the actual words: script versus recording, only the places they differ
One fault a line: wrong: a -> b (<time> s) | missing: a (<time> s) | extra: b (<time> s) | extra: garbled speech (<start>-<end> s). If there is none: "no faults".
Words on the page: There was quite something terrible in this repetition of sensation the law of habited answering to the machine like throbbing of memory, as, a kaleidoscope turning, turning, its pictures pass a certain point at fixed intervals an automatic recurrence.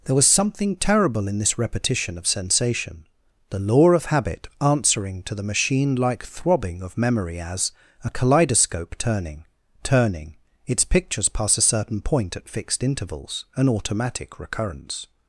missing: quite (0.3 s)
wrong: habited -> habit (4.0 s)